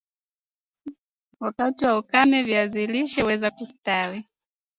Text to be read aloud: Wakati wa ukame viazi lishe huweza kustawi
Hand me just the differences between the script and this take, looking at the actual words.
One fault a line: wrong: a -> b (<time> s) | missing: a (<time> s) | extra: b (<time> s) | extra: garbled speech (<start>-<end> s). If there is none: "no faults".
no faults